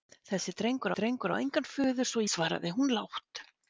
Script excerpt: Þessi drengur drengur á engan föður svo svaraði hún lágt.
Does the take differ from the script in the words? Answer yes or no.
no